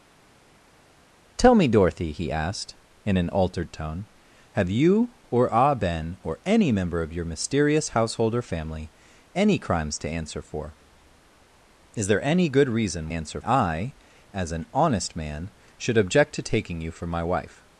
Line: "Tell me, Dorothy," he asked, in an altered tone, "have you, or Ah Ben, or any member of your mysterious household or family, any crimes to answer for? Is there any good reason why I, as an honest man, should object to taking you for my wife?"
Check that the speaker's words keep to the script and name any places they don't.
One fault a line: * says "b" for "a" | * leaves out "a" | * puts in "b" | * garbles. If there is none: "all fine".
* says "answer" for "why"